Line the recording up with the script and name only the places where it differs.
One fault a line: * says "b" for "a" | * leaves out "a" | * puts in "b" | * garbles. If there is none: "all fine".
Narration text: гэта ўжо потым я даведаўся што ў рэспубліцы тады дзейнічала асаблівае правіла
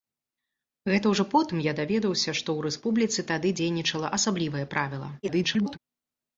* garbles